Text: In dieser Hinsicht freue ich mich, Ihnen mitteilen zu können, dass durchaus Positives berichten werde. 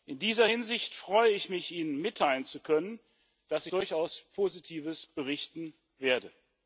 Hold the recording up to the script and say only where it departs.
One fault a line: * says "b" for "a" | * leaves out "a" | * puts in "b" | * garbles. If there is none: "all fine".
all fine